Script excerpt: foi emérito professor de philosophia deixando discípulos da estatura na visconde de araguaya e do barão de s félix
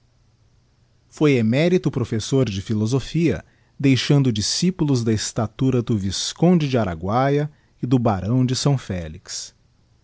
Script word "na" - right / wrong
wrong